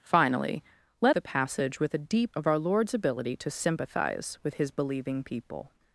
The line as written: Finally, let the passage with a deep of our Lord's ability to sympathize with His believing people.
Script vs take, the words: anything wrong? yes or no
no